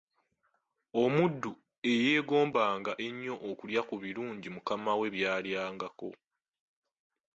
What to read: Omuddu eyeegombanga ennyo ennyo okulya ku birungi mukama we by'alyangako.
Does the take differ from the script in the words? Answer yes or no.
yes